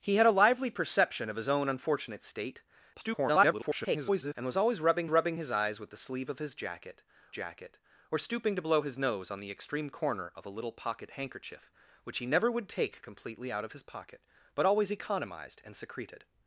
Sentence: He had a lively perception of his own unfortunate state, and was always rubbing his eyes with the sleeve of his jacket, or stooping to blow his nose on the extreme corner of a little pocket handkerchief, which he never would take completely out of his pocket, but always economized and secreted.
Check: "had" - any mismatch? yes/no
no